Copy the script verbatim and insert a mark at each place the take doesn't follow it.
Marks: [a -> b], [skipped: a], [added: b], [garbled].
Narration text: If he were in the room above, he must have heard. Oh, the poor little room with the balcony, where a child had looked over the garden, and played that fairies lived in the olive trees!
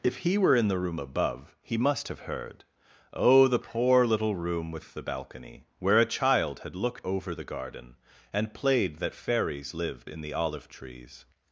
If he were in the room above, he must have heard. Oh, the poor little room with the balcony, where a child had looked over the garden, and played that fairies lived in the olive trees!